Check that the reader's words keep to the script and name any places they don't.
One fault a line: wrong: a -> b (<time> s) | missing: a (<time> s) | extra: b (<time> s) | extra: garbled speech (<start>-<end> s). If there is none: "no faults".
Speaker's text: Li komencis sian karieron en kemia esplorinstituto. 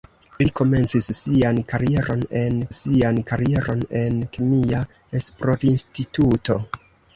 extra: sian karieron en (2.8 s)